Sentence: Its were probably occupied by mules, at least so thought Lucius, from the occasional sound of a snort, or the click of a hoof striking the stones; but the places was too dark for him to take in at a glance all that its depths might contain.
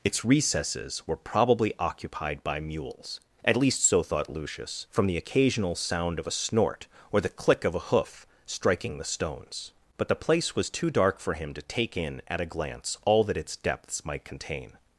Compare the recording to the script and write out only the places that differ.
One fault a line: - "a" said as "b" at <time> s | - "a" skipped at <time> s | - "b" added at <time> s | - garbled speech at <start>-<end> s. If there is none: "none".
- "recesses" added at 0.2 s
- "places" said as "place" at 10.2 s